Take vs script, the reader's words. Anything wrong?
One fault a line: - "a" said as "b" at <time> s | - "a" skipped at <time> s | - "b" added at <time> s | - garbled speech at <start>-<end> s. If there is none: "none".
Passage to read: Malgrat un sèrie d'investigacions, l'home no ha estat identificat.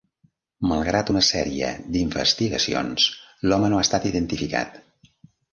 - "un" said as "una" at 1.1 s